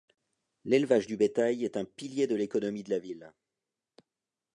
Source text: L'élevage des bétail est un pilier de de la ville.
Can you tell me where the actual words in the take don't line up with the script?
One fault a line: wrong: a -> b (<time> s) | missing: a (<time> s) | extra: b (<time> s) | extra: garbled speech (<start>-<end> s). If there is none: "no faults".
wrong: des -> du (1.1 s)
extra: l'économie (2.3 s)